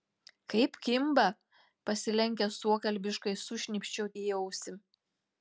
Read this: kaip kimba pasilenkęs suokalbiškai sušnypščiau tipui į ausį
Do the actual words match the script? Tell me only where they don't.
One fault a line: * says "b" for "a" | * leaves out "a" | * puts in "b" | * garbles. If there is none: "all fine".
* leaves out "tipui"